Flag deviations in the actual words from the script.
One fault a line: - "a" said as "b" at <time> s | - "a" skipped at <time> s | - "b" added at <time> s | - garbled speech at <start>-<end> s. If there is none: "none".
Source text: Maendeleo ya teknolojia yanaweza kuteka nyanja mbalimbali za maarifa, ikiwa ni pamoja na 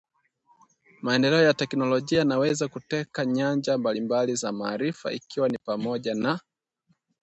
none